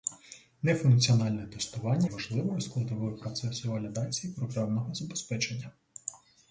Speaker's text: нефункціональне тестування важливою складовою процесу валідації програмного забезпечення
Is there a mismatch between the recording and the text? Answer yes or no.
no